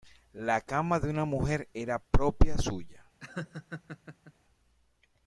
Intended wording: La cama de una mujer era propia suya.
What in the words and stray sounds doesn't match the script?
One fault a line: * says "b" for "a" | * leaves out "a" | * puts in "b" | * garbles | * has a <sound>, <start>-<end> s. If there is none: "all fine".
* has a laugh, 3.2-4.3 s